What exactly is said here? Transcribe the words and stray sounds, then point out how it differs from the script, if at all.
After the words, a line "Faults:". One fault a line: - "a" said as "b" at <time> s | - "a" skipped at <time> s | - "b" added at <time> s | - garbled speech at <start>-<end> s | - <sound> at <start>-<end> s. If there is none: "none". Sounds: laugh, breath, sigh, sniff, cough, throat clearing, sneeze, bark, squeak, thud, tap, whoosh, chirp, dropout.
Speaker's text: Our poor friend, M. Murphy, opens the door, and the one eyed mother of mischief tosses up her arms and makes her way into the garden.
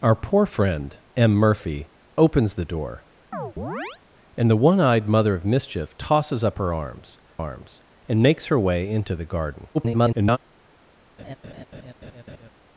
Our poor friend, M. Murphy, opens the door, and the one eyed mother of mischief tosses up her arms arms and makes her way into the garden. [garbled]
Faults:
- chirp at 3.3-4.0 s
- "arms" added at 7.4 s
- garbled speech at 9.7-10.4 s
- laugh at 11.2-12.5 s